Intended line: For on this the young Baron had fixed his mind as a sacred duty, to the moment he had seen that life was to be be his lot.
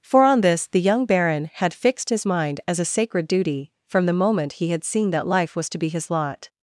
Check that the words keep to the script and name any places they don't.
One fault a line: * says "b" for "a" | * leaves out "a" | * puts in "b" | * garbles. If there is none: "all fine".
* says "from" for "to"
* leaves out "be"